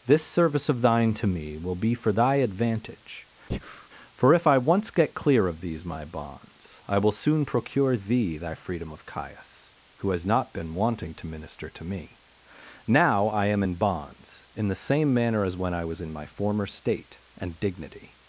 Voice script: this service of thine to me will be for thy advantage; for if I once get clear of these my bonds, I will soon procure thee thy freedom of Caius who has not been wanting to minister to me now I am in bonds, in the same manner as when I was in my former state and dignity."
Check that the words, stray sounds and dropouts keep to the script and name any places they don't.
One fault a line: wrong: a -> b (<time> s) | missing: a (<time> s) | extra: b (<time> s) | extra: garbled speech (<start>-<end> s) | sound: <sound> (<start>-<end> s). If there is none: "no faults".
sound: breath (3.5-3.9 s)